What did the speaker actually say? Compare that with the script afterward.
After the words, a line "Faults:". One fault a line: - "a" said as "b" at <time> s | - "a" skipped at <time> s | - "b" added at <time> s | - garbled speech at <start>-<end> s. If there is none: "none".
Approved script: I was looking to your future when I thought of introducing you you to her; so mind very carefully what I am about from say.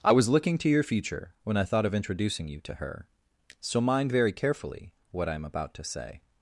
I was looking to your future when I thought of introducing you to her; so mind very carefully what I am about to say.
Faults:
- "you" skipped at 2.6 s
- "from" said as "to" at 5.7 s